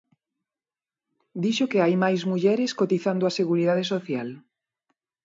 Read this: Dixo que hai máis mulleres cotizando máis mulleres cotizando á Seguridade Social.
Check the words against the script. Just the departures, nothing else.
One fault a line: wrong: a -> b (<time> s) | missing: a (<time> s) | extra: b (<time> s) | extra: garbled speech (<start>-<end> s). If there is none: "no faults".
missing: máis mulleres cotizando (3.2 s)